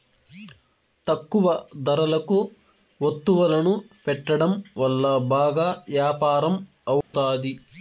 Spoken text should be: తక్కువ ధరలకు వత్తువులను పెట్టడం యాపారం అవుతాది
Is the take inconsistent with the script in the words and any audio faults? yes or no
yes